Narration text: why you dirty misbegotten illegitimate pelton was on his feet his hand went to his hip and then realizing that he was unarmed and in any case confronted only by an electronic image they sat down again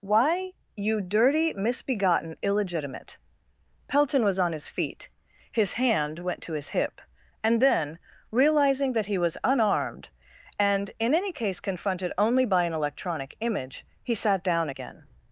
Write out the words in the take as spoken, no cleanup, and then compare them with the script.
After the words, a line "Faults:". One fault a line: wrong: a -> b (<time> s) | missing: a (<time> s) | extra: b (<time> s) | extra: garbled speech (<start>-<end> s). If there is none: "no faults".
why you dirty misbegotten illegitimate pelton was on his feet his hand went to his hip and then realizing that he was unarmed and in any case confronted only by an electronic image he sat down again
Faults:
wrong: they -> he (14.0 s)